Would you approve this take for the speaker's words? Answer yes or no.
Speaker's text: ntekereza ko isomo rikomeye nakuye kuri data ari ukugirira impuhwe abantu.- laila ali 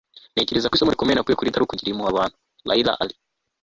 no